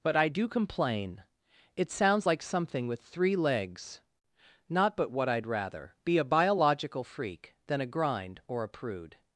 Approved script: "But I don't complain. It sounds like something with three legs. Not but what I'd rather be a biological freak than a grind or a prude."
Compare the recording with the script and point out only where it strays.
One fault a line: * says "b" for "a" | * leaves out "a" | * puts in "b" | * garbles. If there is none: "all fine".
* says "do" for "don't"